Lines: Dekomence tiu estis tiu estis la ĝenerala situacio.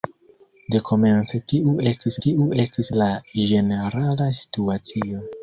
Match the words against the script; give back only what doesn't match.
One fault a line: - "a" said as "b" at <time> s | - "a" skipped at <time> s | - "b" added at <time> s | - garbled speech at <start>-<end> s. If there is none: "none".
none